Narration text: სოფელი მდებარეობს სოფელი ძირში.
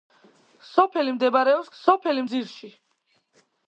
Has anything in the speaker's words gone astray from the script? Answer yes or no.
no